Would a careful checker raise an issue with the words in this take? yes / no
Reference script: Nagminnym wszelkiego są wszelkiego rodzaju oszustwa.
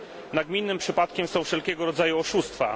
yes